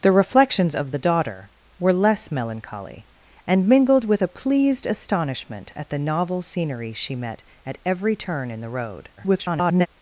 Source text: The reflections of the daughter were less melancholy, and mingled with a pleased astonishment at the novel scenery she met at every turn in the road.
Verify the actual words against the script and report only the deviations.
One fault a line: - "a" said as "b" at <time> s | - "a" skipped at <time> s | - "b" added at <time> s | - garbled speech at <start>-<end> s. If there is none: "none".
- garbled speech at 9.2-9.9 s